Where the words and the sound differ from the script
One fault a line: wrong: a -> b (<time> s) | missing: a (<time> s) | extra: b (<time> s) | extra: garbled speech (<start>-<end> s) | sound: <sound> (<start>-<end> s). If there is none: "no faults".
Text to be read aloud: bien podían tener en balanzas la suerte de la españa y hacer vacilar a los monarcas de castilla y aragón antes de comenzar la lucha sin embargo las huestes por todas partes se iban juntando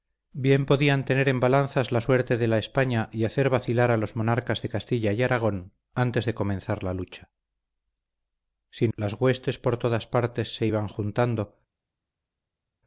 missing: embargo (8.9 s)